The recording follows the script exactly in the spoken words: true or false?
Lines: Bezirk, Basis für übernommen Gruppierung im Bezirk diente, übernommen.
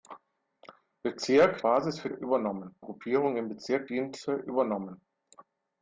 true